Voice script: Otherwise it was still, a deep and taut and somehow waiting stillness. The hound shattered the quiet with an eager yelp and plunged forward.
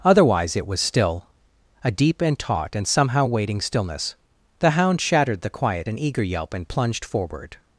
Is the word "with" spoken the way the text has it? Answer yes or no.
no